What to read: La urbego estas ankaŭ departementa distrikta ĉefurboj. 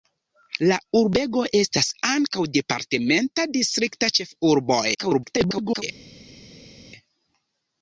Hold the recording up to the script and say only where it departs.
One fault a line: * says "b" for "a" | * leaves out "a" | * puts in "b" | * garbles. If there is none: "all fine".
* garbles